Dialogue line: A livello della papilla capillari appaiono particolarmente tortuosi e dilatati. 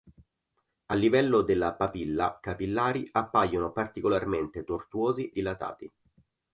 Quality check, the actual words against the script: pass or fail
fail